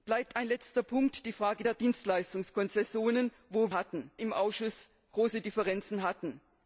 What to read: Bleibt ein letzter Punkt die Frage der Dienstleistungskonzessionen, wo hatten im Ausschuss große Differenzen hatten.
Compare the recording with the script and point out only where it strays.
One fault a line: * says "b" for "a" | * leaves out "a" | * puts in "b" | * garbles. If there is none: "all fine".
all fine